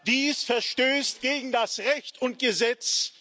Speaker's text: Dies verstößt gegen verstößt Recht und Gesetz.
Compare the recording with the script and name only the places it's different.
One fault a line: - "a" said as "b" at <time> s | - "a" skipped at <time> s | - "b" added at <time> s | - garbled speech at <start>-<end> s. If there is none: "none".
- "verstößt" said as "das" at 1.5 s